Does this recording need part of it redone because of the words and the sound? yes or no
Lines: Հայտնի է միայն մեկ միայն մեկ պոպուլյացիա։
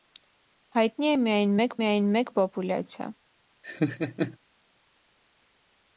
yes